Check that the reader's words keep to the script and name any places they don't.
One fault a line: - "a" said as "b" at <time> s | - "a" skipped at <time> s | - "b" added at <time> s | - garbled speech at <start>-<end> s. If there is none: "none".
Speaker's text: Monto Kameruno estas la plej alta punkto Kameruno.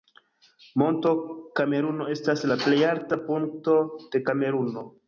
- "de" added at 4.1 s